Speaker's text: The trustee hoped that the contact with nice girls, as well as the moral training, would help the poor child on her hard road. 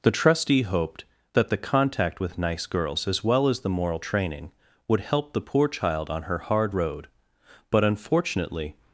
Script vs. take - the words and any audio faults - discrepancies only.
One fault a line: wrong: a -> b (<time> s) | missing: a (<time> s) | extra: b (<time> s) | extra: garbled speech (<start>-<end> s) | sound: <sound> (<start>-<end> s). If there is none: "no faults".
extra: But unfortunately (7.7 s)